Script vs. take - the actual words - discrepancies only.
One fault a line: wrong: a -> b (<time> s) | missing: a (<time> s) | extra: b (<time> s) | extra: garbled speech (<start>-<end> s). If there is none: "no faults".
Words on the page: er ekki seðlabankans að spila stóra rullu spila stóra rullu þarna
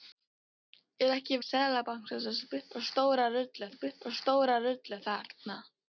no faults